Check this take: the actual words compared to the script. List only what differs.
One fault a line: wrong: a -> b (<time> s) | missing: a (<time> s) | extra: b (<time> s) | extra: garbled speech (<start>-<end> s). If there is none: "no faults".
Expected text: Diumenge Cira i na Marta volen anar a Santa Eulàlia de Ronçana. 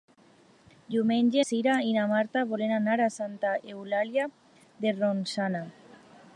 no faults